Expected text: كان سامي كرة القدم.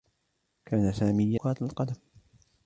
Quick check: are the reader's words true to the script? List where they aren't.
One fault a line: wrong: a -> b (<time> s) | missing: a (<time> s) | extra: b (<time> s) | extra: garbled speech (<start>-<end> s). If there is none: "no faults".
no faults